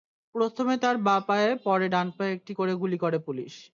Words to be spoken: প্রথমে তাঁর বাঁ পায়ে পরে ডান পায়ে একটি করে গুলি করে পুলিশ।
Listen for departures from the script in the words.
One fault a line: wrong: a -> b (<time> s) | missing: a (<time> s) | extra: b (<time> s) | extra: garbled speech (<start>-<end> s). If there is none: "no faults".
no faults